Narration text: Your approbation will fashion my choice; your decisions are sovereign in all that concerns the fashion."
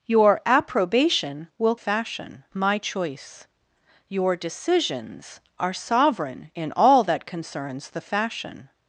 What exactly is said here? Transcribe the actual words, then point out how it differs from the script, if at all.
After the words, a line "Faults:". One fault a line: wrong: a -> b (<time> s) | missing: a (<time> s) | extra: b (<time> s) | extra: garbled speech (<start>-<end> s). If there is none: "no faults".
Your approbation will fashion my choice; your decisions are sovereign in all that concerns the fashion."
Faults:
no faults